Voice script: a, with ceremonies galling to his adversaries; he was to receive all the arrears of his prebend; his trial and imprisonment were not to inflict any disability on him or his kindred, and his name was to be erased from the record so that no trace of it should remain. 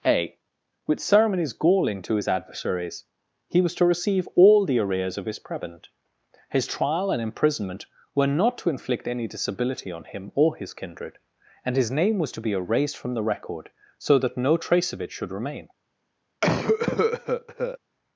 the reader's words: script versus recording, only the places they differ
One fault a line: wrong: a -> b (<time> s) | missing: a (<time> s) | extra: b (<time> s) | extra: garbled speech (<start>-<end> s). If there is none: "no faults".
no faults